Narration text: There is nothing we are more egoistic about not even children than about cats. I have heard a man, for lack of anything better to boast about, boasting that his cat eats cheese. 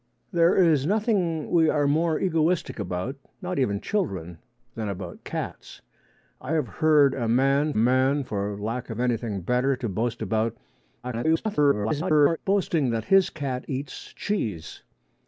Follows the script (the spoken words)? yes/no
no